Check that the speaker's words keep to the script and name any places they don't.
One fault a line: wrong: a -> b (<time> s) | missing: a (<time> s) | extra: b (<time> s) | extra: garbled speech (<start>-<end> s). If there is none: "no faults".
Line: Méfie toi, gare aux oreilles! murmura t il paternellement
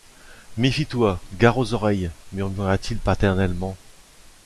no faults